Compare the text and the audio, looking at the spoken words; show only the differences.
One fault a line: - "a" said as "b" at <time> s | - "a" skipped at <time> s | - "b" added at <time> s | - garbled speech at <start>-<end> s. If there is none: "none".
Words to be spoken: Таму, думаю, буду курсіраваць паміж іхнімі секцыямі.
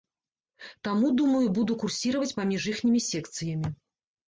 none